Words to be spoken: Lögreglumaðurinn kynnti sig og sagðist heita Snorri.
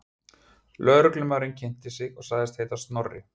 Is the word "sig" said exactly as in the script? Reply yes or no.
yes